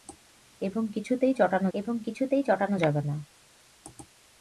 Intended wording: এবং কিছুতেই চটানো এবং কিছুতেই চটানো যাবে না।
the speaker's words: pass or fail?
pass